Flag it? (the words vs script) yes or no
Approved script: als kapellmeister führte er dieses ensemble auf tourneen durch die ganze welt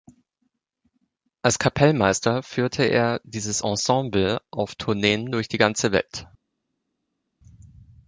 no